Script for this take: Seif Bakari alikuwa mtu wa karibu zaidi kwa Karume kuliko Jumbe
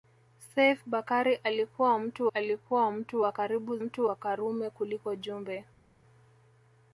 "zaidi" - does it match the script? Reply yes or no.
no